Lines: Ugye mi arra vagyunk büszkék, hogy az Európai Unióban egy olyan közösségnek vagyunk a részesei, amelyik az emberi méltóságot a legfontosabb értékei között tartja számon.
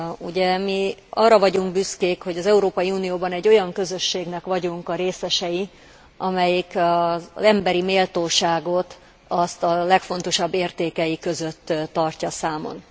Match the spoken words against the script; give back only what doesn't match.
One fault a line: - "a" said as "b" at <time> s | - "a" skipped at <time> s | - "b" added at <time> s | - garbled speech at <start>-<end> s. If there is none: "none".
none